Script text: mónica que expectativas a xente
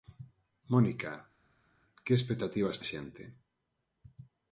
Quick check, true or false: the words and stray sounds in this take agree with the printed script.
true